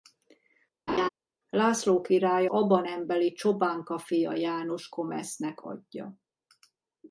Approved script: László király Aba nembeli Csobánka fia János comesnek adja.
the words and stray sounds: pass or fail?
fail